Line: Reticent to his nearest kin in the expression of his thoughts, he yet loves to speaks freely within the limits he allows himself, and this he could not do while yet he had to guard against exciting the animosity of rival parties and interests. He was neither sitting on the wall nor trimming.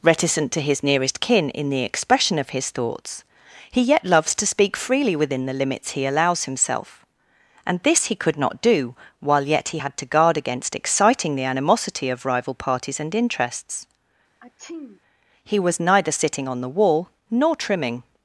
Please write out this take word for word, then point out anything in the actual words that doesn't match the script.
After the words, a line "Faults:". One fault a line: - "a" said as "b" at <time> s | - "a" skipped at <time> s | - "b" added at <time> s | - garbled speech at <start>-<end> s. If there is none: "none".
Reticent to his nearest kin in the expression of his thoughts, he yet loves to speak freely within the limits he allows himself, and this he could not do while yet he had to guard against exciting the animosity of rival parties and interests. He was neither sitting on the wall nor trimming.
Faults:
- "speaks" said as "speak" at 4.5 s